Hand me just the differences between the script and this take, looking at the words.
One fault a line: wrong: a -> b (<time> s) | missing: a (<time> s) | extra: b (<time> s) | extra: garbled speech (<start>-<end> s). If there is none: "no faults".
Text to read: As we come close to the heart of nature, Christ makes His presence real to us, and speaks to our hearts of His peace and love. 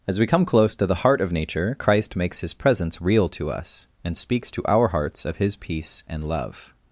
no faults